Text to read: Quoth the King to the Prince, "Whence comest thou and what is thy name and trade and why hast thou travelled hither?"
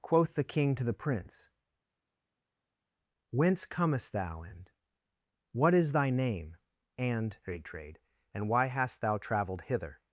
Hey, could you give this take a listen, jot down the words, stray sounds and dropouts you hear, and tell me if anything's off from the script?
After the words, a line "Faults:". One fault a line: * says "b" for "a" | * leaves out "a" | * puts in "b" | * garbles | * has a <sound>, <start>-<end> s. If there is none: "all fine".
Quoth the King to the Prince, "Whence comest thou and what is thy name and trade trade and why hast thou travelled hither?"
Faults:
* puts in "trade"